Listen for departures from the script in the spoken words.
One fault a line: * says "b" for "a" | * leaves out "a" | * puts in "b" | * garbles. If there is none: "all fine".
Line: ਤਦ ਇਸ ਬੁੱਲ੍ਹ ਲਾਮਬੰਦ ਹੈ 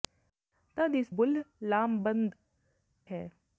all fine